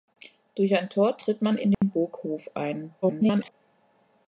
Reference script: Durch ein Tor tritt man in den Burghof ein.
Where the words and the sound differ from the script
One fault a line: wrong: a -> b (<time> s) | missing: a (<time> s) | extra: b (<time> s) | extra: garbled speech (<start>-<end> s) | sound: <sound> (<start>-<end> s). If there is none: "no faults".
sound: dropout (1.7-1.8 s)
extra: garbled speech (3.0-3.5 s)